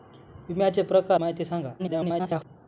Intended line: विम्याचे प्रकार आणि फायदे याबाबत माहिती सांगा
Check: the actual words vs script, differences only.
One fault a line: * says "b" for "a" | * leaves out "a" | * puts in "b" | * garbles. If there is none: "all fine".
* leaves out "आणि फायदे याबाबत"
* garbles